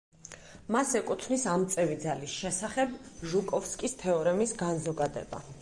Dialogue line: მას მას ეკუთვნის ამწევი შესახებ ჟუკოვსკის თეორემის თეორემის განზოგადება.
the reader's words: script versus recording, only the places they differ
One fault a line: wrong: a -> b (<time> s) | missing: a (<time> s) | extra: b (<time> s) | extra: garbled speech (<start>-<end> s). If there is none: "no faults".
missing: მას (0.9 s)
extra: ძალის (2.0 s)
missing: თეორემის (4.6 s)